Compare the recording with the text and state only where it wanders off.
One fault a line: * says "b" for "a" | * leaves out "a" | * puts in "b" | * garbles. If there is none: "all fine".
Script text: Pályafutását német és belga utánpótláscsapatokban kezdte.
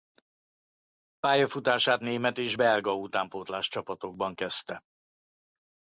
all fine